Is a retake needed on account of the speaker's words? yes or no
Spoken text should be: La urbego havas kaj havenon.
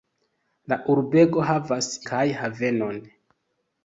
no